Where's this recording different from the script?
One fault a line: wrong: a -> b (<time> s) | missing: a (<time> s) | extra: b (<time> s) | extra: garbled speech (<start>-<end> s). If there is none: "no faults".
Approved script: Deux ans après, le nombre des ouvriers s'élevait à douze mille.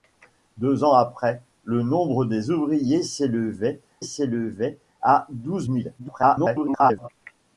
extra: s'élevait (4.0 s)
extra: garbled speech (6.0-7.1 s)